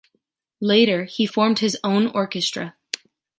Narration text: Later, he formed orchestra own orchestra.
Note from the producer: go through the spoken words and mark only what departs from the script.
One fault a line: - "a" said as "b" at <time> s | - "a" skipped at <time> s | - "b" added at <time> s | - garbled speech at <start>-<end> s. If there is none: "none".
- "orchestra" said as "his" at 1.6 s